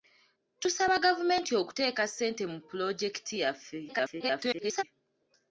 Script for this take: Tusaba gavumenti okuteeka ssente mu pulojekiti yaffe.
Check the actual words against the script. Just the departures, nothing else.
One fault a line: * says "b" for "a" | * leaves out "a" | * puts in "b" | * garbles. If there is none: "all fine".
* garbles